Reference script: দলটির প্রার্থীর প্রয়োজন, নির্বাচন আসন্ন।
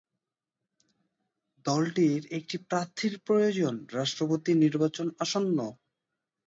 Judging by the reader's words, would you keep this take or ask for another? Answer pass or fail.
fail